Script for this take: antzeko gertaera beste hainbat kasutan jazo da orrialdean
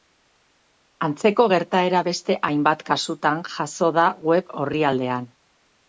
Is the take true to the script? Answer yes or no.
no